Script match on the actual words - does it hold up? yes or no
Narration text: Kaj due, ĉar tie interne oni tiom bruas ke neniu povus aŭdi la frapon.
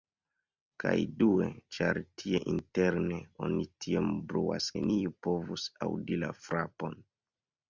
no